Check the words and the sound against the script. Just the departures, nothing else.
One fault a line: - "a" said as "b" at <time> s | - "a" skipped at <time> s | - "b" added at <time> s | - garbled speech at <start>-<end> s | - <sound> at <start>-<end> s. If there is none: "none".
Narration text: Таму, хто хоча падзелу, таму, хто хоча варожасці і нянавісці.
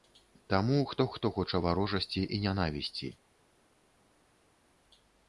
- "хоча падзелу таму" skipped at 1.0 s